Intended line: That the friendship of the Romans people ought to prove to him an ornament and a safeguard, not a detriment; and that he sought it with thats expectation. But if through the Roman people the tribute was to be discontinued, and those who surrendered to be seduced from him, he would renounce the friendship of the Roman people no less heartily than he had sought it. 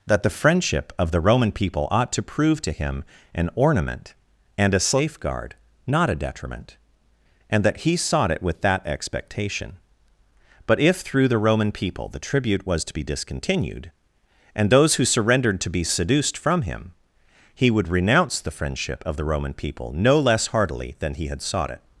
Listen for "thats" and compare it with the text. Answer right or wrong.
wrong